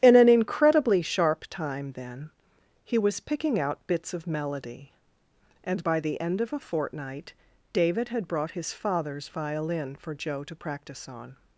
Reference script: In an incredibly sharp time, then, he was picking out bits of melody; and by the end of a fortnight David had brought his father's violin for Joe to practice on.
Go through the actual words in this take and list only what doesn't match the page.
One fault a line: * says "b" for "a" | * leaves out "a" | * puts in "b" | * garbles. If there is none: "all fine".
all fine